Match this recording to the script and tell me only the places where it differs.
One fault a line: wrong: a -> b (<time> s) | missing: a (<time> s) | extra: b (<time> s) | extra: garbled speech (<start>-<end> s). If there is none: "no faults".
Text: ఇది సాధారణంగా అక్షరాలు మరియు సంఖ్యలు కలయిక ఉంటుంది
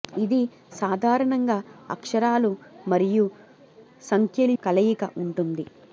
no faults